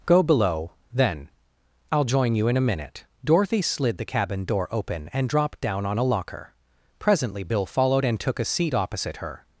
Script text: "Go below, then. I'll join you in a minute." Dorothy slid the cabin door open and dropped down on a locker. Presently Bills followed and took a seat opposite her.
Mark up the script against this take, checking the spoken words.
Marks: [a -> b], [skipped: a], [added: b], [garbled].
"Go below, then. I'll join you in a minute." Dorothy slid the cabin door open and dropped down on a locker. Presently [Bills -> Bill] followed and took a seat opposite her.